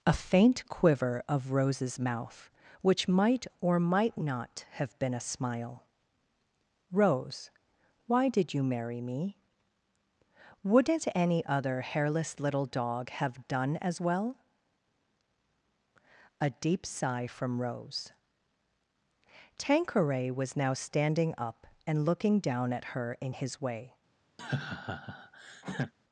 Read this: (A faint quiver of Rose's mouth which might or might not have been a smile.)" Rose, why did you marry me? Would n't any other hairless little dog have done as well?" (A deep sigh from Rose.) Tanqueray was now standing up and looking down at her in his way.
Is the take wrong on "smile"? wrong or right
right